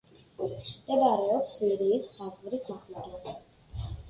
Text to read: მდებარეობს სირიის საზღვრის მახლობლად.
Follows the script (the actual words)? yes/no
yes